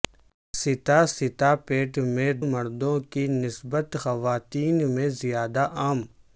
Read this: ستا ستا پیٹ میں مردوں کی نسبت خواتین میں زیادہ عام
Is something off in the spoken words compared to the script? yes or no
no